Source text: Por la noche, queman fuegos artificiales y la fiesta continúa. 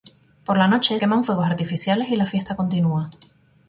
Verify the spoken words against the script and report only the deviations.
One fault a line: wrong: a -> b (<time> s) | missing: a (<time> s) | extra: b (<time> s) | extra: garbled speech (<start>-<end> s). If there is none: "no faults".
no faults